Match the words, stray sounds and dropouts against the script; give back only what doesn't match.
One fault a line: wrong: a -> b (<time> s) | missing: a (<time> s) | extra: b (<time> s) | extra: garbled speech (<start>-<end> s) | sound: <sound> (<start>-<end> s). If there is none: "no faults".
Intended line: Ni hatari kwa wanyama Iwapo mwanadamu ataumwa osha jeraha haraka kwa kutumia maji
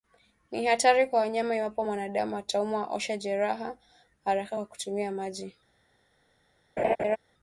sound: laugh (6.8-7.2 s)